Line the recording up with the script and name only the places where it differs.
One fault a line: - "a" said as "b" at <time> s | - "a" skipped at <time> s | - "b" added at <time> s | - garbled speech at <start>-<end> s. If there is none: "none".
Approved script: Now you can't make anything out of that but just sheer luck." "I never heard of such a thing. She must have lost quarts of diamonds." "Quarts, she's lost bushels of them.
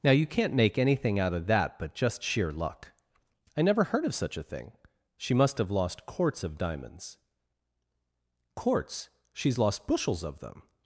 none